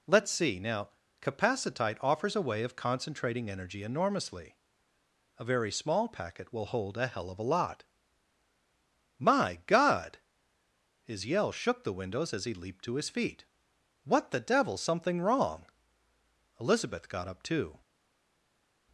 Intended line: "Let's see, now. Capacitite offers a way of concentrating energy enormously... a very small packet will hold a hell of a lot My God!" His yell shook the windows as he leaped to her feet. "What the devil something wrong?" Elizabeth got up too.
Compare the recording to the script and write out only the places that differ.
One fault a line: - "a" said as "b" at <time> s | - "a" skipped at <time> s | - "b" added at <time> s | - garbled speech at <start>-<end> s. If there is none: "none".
- "her" said as "his" at 13.0 s